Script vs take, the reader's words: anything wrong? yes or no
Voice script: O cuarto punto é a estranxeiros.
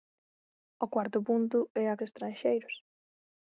no